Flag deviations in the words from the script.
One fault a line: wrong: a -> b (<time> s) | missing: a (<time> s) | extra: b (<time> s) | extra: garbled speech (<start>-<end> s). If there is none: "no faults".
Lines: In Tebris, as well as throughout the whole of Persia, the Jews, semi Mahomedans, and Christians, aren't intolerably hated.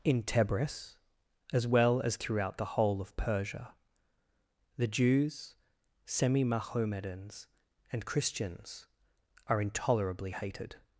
wrong: aren't -> are (9.5 s)